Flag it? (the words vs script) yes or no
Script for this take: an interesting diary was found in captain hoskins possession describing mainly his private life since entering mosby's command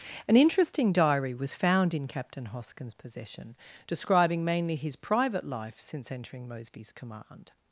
no